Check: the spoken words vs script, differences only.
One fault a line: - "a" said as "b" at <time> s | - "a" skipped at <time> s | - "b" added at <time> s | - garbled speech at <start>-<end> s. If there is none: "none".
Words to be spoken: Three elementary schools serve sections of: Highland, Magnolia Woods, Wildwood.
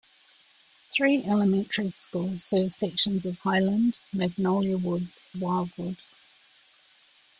none